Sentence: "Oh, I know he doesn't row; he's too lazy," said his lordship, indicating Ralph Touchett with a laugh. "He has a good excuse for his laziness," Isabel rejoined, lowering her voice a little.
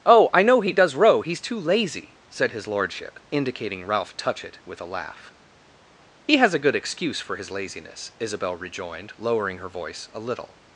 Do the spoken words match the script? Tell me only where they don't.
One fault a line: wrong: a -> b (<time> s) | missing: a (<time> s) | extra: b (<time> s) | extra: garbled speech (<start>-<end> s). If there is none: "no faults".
wrong: doesn't -> does (0.7 s)